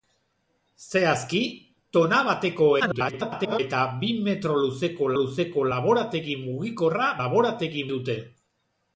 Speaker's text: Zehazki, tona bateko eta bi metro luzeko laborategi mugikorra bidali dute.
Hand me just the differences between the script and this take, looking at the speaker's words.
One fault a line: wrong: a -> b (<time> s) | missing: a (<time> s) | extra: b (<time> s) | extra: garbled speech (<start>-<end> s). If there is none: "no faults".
extra: garbled speech (2.8-3.6 s)
extra: luzeko (5.2 s)
wrong: bidali -> laborategi (7.2 s)